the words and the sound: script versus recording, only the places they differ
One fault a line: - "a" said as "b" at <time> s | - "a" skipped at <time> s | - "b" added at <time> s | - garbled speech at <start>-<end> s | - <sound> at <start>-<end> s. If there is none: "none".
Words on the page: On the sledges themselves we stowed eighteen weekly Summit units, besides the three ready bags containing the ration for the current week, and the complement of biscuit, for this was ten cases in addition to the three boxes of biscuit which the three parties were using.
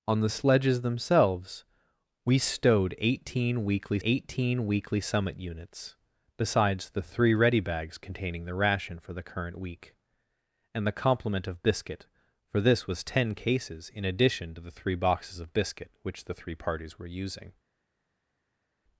- "eighteen weekly" added at 4.0 s